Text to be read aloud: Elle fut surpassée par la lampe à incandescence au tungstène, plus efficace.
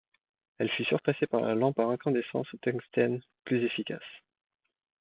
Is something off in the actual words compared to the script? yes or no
no